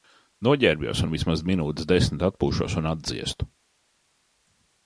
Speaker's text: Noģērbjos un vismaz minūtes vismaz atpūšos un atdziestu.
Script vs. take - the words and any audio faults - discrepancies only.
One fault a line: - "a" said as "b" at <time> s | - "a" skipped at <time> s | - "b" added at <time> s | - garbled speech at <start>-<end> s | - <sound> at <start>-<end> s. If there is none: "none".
- "vismaz" said as "desmit" at 1.9 s